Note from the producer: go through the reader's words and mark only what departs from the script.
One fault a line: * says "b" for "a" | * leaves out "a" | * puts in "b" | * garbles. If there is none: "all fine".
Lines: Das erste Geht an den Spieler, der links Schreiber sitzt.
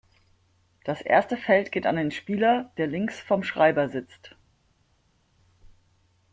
* puts in "Feld"
* puts in "vom"